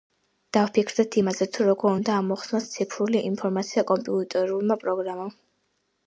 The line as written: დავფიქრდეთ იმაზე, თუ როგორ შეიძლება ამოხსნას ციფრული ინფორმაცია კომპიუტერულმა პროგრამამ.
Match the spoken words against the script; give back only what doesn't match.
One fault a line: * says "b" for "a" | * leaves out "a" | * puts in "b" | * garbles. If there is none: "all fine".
* says "უნდა" for "შეიძლება"